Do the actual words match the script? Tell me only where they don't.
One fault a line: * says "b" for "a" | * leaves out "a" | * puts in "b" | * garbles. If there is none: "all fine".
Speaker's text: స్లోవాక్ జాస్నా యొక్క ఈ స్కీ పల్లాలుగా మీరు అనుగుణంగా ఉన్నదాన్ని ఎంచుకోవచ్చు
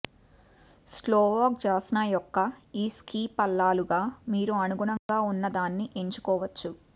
all fine